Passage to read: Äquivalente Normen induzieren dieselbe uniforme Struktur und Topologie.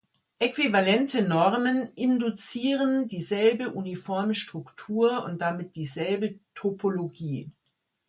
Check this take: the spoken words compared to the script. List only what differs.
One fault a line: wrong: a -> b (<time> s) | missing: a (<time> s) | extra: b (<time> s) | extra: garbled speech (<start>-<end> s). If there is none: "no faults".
extra: damit dieselbe (5.4 s)